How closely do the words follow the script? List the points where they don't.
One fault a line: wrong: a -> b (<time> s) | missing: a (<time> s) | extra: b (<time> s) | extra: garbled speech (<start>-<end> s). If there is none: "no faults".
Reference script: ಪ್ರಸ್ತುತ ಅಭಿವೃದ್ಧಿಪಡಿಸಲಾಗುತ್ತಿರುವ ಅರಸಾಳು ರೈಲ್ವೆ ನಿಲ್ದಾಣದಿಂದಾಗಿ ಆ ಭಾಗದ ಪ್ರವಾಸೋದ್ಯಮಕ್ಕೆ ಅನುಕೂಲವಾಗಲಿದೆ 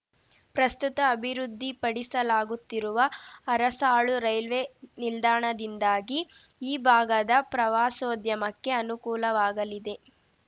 wrong: ಆ -> ಈ (6.6 s)